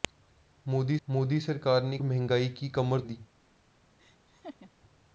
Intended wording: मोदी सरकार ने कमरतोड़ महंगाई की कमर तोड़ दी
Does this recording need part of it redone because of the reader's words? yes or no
yes